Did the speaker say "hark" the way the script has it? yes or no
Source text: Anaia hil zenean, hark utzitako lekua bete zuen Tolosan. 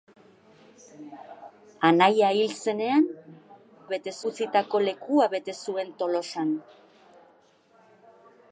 no